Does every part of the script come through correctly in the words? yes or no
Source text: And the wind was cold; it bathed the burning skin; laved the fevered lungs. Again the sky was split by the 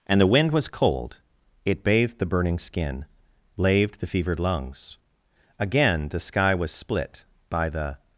yes